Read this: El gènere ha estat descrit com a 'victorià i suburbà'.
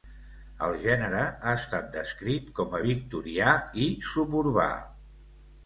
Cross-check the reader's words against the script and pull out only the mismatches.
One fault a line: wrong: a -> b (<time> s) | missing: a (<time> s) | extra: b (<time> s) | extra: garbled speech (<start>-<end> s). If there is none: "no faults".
no faults